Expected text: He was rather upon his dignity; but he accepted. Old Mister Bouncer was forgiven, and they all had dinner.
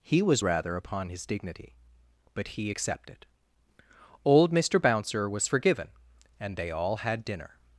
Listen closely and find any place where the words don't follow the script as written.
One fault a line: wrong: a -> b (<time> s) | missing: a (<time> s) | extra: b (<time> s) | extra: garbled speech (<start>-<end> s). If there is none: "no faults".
no faults